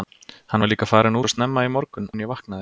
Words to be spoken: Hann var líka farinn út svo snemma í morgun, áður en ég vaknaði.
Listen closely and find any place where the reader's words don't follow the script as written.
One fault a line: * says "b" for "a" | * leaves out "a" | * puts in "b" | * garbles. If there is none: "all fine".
* leaves out "út"
* leaves out "áður"